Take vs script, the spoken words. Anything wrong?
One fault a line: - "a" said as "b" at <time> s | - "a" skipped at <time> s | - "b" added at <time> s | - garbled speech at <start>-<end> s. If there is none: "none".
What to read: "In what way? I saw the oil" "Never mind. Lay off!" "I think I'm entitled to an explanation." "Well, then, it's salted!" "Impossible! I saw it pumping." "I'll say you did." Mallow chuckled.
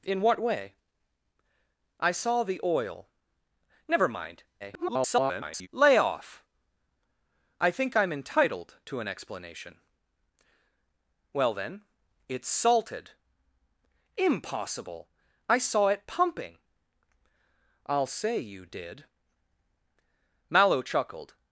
- garbled speech at 4.6-5.7 s